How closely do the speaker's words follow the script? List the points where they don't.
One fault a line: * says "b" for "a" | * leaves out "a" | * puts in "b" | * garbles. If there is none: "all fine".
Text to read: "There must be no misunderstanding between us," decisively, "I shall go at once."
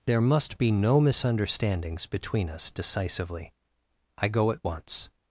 * says "misunderstandings" for "misunderstanding"
* leaves out "shall"